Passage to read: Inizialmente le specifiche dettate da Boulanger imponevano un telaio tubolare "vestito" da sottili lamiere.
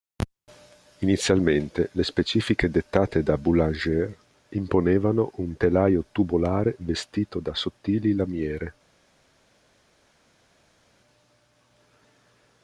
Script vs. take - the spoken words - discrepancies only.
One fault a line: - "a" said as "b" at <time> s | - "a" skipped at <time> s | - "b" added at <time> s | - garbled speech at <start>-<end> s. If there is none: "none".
none